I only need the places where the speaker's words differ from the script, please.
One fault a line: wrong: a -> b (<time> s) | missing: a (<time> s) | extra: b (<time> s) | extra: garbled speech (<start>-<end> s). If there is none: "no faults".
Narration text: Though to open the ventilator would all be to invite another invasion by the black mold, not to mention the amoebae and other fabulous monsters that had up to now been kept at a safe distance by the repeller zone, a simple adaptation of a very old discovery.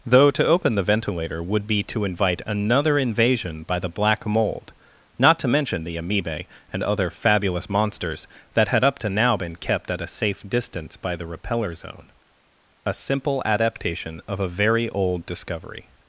missing: all (1.7 s)